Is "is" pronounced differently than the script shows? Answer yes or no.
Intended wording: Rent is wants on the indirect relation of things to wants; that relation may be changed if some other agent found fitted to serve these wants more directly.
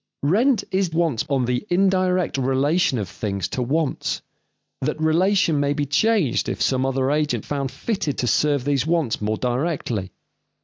no